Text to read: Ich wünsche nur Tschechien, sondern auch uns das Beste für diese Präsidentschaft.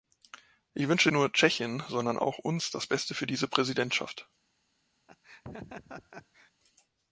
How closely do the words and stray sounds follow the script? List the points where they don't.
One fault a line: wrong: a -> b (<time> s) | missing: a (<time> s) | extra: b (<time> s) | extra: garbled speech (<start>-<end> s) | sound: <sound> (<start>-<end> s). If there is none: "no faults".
sound: laugh (5.1-6.5 s)